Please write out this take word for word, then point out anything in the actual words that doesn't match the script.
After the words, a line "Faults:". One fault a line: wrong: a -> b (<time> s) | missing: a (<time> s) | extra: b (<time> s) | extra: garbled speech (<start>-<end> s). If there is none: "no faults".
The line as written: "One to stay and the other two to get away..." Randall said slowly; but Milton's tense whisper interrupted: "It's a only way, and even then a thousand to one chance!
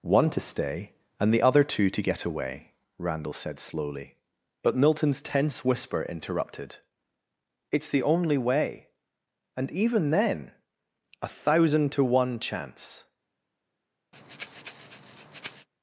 "One to stay and the other two to get away..." Randall said slowly; but Milton's tense whisper interrupted: "It's the only way, and even then a thousand to one chance!
Faults:
wrong: a -> the (7.9 s)